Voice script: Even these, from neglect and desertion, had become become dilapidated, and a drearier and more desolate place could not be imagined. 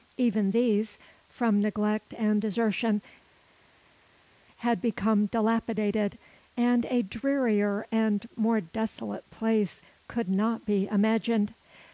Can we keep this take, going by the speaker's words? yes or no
no